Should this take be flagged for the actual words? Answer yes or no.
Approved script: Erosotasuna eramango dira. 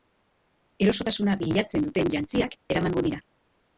yes